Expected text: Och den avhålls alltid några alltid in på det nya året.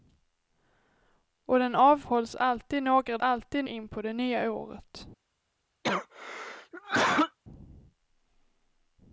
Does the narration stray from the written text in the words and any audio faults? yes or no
yes